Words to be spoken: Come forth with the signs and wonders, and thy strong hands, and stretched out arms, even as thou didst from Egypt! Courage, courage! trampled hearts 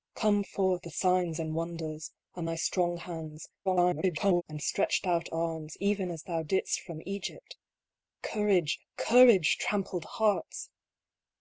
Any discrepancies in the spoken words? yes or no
yes